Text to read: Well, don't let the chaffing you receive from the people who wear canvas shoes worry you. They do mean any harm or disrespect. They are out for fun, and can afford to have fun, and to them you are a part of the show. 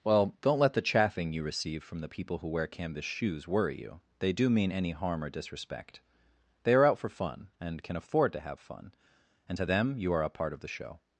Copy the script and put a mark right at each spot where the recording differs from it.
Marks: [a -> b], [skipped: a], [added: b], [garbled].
Well, don't let the chaffing you receive from the people who wear canvas shoes worry you. They do mean any harm or disrespect. They are out for fun, and can afford to have fun, and to them you are a part of the show.